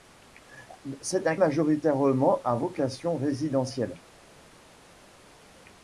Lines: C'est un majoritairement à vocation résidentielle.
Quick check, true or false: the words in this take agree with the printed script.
true